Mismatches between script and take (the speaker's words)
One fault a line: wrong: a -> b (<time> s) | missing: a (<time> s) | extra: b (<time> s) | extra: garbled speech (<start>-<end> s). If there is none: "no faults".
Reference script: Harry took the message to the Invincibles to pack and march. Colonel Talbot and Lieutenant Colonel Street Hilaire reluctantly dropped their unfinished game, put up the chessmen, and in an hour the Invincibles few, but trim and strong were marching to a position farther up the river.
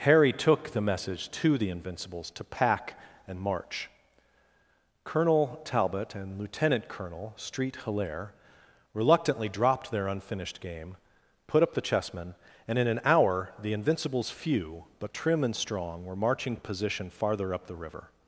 missing: to (16.6 s)